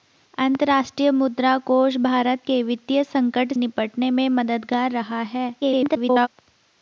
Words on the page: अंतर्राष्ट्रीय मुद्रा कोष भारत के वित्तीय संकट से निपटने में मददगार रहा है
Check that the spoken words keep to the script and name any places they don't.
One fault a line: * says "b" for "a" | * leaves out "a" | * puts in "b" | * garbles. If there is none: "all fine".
* leaves out "से"
* garbles